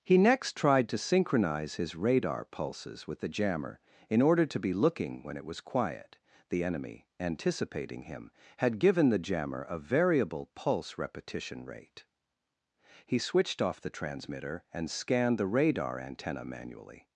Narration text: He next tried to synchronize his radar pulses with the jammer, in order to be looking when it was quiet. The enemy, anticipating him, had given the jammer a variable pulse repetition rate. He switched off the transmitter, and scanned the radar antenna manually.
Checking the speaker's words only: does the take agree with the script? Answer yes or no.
yes